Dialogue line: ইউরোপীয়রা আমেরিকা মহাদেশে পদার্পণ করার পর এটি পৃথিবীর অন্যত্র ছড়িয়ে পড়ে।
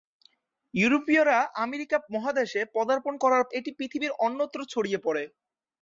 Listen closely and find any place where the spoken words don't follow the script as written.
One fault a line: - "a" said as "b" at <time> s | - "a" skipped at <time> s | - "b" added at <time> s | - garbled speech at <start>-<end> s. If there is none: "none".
- "পর" skipped at 3.4 s